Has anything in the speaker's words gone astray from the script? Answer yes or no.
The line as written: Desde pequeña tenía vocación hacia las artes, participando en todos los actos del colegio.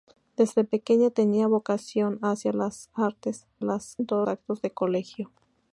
yes